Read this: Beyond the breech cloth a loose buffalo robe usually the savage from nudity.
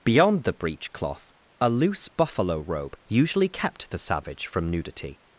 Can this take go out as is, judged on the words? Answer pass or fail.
fail